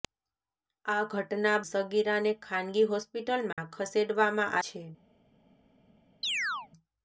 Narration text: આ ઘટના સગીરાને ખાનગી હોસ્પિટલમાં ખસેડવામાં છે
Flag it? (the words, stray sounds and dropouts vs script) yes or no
yes